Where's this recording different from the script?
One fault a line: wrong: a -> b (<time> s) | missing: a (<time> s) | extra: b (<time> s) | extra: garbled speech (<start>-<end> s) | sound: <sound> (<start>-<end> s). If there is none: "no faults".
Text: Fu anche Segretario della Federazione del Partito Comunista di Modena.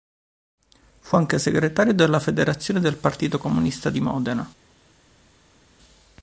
no faults